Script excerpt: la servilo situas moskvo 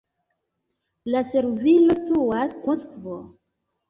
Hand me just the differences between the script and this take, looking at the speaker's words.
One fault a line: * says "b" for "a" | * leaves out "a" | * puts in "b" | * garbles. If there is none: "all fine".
all fine